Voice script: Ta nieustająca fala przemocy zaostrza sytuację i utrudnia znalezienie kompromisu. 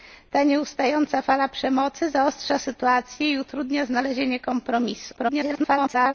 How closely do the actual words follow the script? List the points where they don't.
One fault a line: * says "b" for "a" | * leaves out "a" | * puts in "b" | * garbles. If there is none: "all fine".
* garbles